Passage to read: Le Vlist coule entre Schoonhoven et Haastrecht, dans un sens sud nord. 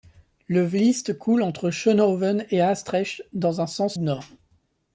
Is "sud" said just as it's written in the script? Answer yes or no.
no